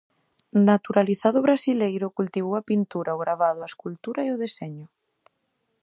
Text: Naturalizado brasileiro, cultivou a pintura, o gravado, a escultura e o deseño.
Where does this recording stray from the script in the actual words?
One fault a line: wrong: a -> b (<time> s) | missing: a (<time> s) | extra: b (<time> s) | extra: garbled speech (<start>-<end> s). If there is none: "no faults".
no faults